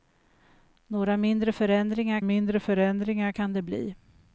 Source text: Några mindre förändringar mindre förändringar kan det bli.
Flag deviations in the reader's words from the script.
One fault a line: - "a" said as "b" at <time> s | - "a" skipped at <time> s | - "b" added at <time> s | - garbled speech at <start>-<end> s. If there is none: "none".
none